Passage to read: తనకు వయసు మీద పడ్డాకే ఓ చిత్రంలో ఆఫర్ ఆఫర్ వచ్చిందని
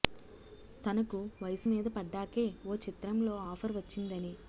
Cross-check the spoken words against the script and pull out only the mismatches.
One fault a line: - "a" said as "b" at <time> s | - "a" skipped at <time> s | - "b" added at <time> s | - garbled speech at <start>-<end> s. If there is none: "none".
- "ఆఫర్" skipped at 3.7 s